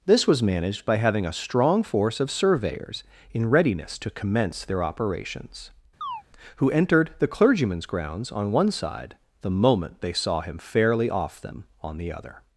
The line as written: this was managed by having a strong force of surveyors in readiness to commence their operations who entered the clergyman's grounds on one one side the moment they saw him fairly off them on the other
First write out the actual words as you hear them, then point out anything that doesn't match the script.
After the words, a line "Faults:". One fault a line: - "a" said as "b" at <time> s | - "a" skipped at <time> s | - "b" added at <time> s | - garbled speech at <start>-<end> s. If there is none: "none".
this was managed by having a strong force of surveyors in readiness to commence their operations who entered the clergyman's grounds on one side the moment they saw him fairly off them on the other
Faults:
- "one" skipped at 8.7 s